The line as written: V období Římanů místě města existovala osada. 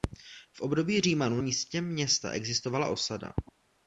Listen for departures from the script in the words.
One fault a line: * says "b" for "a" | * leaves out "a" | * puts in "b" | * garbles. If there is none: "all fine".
all fine